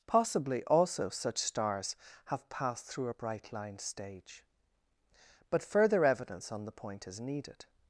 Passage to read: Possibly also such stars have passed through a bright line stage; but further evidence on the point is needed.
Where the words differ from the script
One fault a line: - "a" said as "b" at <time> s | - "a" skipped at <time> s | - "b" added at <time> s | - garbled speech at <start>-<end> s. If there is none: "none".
none